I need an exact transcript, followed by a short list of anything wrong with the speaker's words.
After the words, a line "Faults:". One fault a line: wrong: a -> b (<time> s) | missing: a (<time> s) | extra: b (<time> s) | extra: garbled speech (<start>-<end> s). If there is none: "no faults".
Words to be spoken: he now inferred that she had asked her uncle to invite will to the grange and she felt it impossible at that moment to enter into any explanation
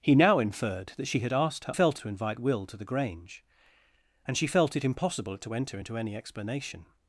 he now inferred that she had asked her felt to invite will to the grange and she felt it impossible at to enter into any explanation
Faults:
wrong: uncle -> felt (1.7 s)
missing: that moment (5.4 s)